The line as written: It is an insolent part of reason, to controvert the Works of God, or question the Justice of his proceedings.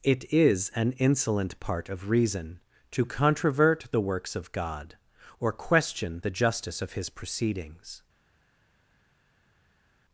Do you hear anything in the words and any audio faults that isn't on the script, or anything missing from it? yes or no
no